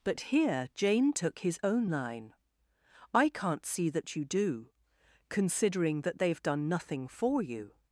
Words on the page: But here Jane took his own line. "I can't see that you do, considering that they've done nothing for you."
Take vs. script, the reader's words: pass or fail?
pass